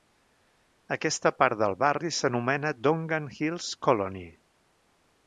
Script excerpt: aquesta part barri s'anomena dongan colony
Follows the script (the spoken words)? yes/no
no